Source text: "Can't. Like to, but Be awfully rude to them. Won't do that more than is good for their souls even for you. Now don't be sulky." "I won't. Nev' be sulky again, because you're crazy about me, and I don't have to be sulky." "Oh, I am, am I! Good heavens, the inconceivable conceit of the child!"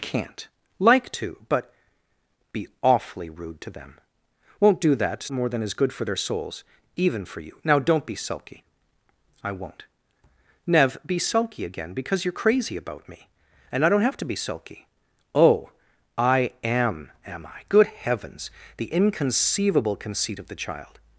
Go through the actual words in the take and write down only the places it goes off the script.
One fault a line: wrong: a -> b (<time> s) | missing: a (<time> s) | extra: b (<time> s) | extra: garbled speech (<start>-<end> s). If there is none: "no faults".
no faults